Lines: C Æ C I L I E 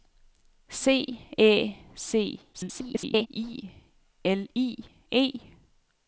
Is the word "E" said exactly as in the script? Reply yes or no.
yes